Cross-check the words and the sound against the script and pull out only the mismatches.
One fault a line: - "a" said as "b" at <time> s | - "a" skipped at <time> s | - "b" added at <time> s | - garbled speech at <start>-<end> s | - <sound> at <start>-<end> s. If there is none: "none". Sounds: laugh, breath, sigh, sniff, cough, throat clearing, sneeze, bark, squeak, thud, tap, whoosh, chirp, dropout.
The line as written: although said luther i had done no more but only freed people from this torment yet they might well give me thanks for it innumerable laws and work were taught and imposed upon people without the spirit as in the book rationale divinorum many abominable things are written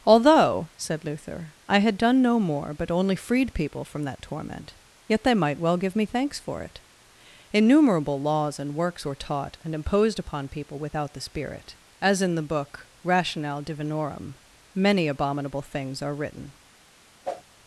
- "this" said as "that" at 4.0 s
- "work" said as "works" at 8.8 s
- whoosh at 17.2-17.4 s